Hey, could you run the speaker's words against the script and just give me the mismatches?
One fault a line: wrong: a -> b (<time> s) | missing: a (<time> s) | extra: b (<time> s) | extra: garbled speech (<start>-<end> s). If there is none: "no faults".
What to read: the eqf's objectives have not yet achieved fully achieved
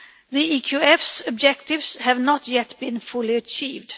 wrong: achieved -> been (2.8 s)